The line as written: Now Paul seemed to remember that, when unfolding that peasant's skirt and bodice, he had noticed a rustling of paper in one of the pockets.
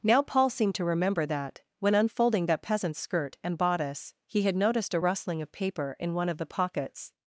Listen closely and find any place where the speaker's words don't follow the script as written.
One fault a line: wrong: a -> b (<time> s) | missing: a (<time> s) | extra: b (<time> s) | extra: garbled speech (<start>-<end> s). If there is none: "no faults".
no faults